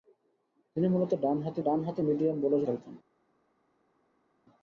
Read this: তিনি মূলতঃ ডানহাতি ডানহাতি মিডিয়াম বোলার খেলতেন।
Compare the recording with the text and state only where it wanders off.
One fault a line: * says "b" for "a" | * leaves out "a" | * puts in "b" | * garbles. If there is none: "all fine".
all fine